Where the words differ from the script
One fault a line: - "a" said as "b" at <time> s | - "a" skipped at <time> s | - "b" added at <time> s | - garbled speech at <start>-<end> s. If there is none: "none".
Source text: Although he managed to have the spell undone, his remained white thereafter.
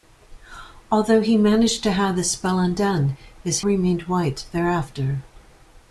none